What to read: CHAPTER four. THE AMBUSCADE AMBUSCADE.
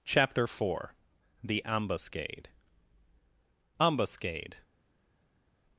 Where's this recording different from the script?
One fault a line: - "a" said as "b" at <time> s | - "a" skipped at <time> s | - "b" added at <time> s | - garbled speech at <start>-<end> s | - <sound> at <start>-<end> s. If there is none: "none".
none